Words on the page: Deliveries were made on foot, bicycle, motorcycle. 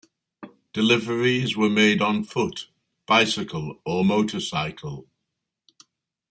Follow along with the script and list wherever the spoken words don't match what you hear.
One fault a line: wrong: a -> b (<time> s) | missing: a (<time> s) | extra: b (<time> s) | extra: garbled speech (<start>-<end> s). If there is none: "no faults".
extra: or (3.9 s)